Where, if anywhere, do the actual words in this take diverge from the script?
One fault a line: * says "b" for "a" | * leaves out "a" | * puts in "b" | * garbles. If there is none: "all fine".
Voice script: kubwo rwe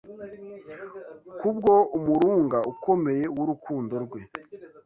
* puts in "umurunga ukomeye w'urukundo"